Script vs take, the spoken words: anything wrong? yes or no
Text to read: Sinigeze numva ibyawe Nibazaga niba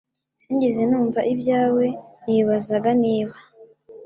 no